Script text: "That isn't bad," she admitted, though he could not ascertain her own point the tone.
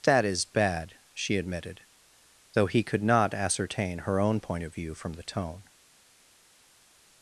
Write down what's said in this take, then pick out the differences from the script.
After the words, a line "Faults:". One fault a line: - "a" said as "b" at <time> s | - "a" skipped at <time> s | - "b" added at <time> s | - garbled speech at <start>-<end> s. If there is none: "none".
"That is bad," she admitted, though he could not ascertain her own point of view from the tone.
Faults:
- "isn't" said as "is" at 0.2 s
- "of view from" added at 4.6 s